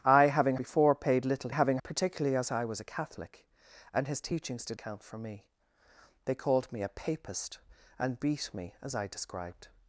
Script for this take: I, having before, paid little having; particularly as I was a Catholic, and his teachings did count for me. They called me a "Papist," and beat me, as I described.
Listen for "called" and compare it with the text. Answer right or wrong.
right